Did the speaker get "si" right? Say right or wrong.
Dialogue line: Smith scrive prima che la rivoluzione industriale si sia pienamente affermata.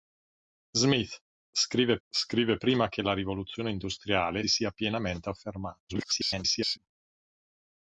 wrong